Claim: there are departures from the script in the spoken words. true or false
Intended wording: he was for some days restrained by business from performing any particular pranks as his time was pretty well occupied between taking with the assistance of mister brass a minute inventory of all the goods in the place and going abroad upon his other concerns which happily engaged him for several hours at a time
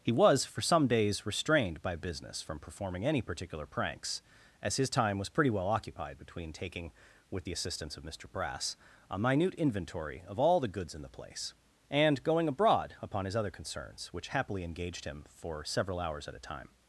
false